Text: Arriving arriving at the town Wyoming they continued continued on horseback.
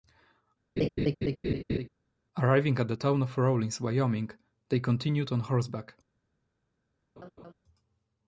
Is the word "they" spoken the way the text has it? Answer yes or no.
yes